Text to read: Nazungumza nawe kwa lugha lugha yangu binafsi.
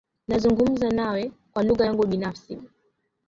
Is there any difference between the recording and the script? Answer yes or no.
yes